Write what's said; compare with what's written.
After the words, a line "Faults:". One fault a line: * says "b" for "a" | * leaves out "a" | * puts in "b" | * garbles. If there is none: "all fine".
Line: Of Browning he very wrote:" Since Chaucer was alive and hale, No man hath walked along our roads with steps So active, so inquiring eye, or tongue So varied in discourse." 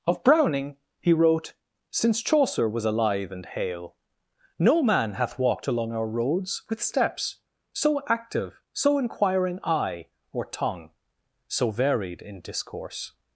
Of Browning he wrote:" Since Chaucer was alive and hale, No man hath walked along our roads with steps So active, so inquiring eye, or tongue So varied in discourse."
Faults:
* leaves out "very"